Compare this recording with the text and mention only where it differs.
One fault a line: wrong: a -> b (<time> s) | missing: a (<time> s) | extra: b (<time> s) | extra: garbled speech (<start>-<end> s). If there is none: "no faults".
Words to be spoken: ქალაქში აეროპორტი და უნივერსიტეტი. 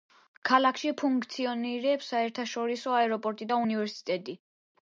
extra: ფუნქციონირებს საერთაშორისო (1.0 s)